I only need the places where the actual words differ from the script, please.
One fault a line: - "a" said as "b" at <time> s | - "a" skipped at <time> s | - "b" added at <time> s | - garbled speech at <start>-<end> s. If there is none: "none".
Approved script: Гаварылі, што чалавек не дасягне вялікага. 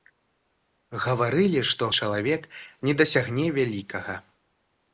none